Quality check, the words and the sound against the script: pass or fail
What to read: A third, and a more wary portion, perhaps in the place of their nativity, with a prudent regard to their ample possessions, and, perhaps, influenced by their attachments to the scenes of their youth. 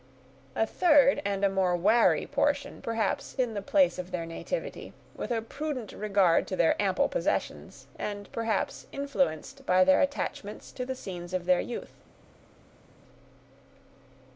pass